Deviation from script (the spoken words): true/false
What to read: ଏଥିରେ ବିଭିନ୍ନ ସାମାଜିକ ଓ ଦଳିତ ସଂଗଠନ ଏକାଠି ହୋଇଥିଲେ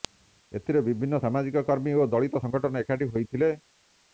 true